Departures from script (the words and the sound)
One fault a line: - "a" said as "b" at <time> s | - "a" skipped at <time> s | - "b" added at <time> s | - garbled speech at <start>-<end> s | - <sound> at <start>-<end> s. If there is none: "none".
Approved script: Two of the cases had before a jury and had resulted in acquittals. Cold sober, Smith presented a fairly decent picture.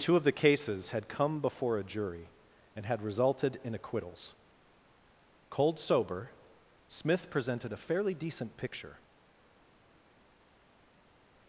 - "come" added at 1.1 s